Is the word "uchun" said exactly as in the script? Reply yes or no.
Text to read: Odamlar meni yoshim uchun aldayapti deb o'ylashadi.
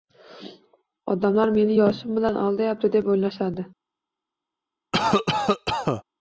no